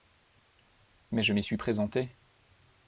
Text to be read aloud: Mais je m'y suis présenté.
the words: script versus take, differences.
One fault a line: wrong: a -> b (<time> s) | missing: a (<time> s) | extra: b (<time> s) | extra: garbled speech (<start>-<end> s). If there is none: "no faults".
no faults